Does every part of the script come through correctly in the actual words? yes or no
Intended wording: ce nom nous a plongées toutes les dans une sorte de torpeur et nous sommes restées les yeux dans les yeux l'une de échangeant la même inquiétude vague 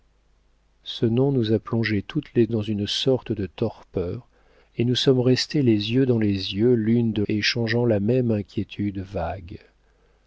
yes